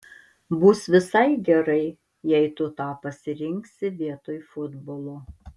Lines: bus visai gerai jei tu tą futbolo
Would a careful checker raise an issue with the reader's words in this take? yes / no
yes